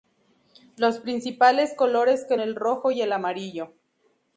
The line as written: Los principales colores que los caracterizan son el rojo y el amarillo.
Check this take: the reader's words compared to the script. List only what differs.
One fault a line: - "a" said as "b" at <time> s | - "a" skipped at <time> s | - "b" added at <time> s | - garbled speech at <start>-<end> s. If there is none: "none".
- "los caracterizan son" skipped at 2.4 s